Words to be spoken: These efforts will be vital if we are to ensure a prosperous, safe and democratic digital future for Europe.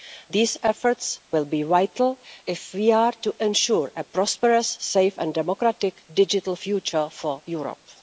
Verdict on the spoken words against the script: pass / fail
pass